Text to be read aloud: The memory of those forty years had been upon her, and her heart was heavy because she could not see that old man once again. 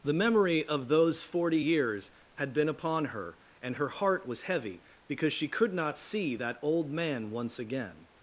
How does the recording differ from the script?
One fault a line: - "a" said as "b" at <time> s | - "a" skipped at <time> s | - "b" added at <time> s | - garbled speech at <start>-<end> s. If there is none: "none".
none